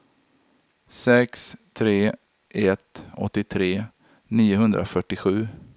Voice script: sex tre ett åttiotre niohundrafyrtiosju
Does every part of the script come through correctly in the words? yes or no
yes